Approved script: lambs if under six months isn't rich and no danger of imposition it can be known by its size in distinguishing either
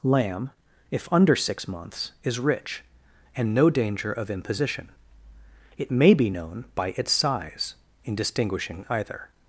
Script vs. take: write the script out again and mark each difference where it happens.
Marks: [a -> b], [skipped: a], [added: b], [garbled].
[lambs -> lamb] if under six months [isn't -> is] rich and no danger of imposition it [can -> may] be known by its size in distinguishing either